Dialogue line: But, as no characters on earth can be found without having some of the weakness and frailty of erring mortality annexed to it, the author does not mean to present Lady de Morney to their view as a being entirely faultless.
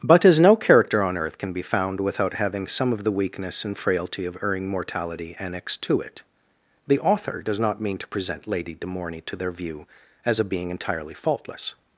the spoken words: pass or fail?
fail